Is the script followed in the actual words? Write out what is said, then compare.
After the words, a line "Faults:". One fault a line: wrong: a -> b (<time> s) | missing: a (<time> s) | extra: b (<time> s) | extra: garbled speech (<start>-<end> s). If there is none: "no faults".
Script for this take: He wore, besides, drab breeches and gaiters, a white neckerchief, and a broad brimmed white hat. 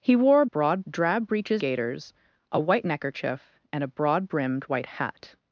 He wore, broad, drab breeches gaiters, a white neckerchief, and a broad brimmed white hat.
Faults:
wrong: besides -> broad (0.4 s)
missing: and (1.6 s)